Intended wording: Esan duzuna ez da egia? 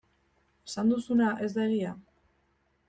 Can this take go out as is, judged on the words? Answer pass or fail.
pass